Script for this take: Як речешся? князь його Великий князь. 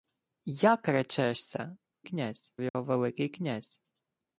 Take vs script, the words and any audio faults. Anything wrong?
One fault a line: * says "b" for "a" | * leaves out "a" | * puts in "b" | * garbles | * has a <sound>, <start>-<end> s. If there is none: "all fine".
* has a dropout, 2.7-2.7 s